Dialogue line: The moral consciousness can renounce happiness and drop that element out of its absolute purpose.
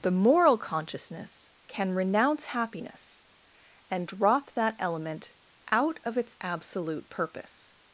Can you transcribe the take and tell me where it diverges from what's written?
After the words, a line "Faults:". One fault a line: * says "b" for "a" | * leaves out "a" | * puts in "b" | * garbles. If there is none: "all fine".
The moral consciousness can renounce happiness and drop that element out of its absolute purpose.
Faults:
all fine